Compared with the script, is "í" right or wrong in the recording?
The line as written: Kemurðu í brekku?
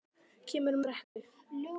right